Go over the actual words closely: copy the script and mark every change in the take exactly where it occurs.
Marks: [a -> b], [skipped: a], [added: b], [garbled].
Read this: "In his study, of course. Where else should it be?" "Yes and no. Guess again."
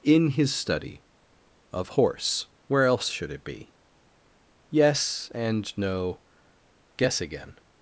"In his study, of [course. -> horse] Where else should it be?" "Yes and no. Guess again."